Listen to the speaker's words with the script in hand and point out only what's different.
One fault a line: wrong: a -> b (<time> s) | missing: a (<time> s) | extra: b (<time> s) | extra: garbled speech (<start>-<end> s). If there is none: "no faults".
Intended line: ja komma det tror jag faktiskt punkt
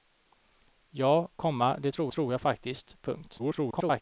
extra: tror (2.1 s)
extra: garbled speech (3.4-4.0 s)